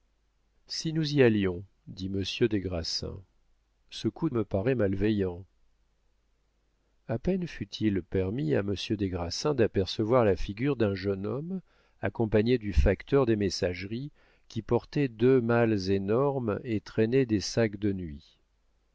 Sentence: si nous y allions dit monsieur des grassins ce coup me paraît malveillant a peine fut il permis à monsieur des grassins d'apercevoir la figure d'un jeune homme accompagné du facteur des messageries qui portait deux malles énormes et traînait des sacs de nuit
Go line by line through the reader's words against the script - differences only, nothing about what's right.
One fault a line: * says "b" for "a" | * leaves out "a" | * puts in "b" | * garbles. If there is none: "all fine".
all fine